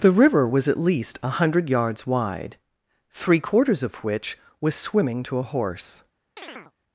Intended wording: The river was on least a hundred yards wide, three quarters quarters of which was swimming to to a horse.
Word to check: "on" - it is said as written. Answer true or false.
false